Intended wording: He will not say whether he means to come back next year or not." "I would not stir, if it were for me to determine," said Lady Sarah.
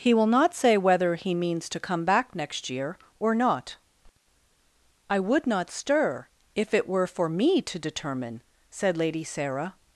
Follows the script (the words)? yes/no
yes